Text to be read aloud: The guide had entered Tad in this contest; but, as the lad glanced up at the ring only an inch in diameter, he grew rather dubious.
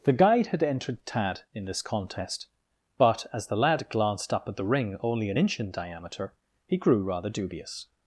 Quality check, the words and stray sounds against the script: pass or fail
pass